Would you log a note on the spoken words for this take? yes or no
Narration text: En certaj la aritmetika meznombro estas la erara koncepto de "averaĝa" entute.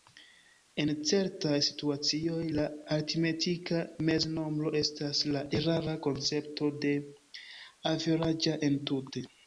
yes